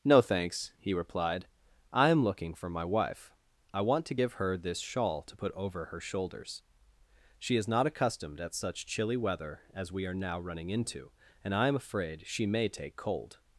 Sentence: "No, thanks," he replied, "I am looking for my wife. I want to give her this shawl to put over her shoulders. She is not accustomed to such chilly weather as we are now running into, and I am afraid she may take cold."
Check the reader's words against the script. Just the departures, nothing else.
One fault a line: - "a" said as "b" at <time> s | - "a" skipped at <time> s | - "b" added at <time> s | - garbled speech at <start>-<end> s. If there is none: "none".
- "to" said as "at" at 8.4 s